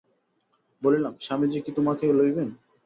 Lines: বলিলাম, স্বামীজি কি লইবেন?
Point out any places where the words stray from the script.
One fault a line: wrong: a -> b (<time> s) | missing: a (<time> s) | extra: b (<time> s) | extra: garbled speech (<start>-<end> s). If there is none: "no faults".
extra: তোমাকে (1.8 s)